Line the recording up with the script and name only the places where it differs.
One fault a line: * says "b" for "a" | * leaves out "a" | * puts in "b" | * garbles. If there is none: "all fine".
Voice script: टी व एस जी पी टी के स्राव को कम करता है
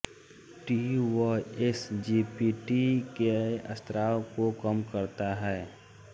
all fine